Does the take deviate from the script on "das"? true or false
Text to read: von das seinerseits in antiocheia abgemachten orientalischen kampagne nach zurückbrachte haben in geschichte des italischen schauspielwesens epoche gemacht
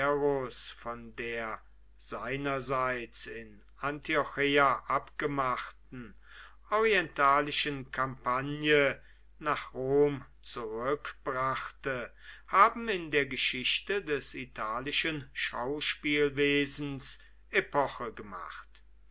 true